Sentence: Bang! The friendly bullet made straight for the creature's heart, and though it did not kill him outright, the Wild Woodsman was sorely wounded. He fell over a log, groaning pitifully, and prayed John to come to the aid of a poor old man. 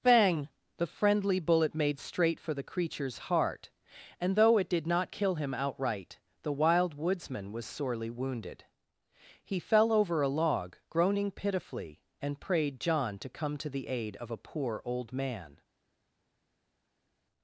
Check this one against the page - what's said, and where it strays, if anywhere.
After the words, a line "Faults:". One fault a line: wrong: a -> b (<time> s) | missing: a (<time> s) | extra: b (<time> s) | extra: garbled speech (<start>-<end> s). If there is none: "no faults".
Bang! The friendly bullet made straight for the creature's heart, and though it did not kill him outright, the Wild Woodsman was sorely wounded. He fell over a log, groaning pitifully, and prayed John to come to the aid of a poor old man.
Faults:
no faults